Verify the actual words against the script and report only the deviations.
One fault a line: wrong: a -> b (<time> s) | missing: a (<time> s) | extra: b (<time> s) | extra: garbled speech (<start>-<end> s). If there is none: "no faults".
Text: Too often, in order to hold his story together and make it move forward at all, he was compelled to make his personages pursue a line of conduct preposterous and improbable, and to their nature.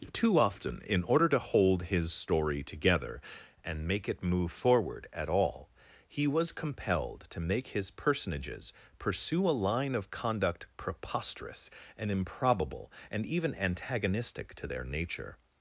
extra: even antagonistic (13.2 s)